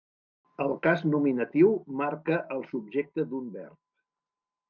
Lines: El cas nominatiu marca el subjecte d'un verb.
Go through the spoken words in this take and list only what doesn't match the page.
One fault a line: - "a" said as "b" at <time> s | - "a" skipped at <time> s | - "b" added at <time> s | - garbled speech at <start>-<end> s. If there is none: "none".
none